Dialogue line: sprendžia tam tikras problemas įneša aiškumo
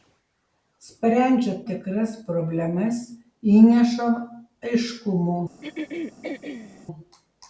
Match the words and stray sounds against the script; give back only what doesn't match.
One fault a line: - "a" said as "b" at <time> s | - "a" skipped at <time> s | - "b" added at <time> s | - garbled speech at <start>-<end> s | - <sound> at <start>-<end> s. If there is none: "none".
- "tam" skipped at 1.5 s
- throat clearing at 5.6-6.9 s